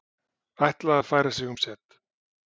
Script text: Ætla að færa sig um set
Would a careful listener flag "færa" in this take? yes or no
no